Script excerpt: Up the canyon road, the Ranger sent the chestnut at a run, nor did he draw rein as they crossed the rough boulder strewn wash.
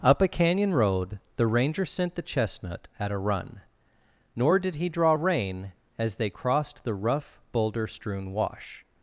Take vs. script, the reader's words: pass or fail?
fail